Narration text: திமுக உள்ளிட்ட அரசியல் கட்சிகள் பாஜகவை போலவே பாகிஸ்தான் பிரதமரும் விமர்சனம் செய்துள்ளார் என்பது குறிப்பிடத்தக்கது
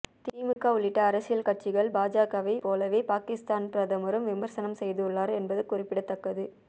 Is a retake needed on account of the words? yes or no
no